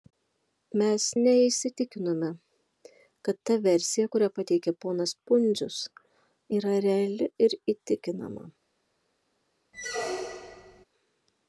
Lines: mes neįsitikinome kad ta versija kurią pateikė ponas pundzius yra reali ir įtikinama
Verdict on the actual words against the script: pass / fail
pass